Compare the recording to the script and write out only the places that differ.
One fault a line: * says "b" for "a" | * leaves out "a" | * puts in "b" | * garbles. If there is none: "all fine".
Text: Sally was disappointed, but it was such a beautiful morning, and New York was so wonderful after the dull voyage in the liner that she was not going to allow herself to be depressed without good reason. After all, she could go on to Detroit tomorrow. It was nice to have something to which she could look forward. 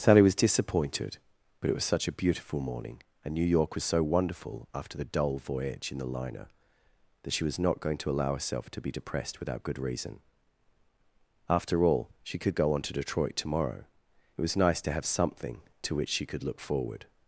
all fine